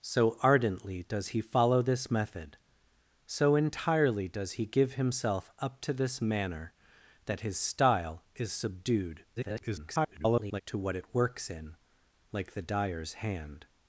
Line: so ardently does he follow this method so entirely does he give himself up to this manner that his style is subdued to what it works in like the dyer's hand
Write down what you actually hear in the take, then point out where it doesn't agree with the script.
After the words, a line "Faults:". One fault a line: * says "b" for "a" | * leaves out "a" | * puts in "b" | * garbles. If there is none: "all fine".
so ardently does he follow this method so entirely does he give himself up to this manner that his style is subdued [garbled] to what it works in like the dyer's hand
Faults:
* garbles